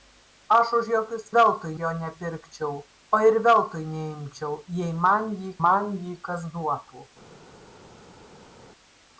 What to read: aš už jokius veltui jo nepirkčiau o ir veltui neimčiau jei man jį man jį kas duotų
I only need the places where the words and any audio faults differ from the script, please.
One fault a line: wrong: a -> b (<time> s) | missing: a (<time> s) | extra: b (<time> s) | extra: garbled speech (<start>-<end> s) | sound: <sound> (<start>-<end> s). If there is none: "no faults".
no faults